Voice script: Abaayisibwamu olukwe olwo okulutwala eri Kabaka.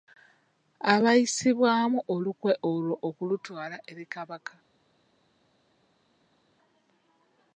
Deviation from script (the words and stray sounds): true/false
false